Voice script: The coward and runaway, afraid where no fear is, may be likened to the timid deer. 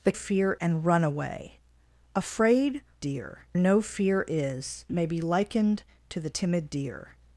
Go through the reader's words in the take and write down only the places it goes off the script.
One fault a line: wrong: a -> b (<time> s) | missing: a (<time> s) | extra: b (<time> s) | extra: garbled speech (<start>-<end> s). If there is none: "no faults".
wrong: coward -> fear (0.1 s)
wrong: where -> deer (3.0 s)